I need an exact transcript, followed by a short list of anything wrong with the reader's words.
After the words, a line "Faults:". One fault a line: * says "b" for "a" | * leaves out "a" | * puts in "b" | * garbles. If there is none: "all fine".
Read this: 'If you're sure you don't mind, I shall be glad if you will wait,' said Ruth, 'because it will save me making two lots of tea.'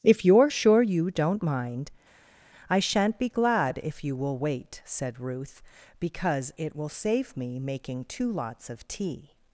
'If you're sure you don't mind, I shan't be glad if you will wait,' said Ruth, 'because it will save me making two lots of tea.'
Faults:
* says "shan't" for "shall"